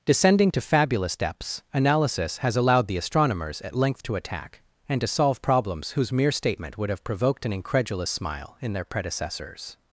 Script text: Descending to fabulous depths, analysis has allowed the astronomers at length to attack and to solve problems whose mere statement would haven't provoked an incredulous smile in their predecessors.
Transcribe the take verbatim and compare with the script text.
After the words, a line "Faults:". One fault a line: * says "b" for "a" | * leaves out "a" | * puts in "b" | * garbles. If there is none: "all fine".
Descending to fabulous depths, analysis has allowed the astronomers at length to attack and to solve problems whose mere statement would have provoked an incredulous smile in their predecessors.
Faults:
* says "have" for "haven't"